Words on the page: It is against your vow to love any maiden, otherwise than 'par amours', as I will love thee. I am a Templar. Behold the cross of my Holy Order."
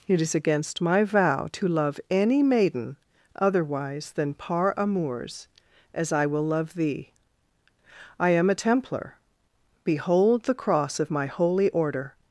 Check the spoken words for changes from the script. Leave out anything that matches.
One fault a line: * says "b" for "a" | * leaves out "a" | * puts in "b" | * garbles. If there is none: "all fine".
* says "my" for "your"